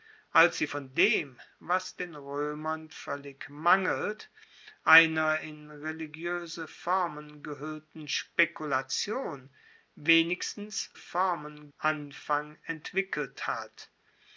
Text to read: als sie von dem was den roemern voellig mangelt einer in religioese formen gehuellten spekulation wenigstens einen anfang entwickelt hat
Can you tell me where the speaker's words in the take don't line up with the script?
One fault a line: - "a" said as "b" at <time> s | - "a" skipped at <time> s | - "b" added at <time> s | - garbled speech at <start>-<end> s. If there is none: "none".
- "einen" said as "formen" at 11.0 s